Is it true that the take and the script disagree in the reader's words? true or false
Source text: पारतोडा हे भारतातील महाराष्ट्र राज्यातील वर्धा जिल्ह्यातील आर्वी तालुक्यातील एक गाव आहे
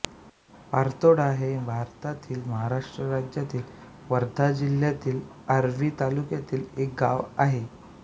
false